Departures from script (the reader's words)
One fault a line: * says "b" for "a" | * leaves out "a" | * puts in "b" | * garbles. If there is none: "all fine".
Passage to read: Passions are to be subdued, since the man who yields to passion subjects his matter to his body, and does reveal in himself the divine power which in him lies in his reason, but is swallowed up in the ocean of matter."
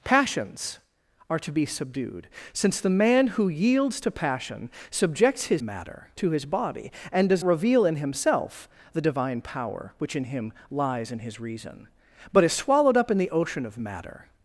all fine